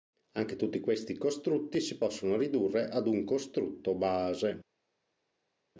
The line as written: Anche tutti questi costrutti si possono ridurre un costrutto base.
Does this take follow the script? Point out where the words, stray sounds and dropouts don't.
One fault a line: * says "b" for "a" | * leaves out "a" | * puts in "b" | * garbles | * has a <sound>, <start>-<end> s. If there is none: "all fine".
* puts in "ad"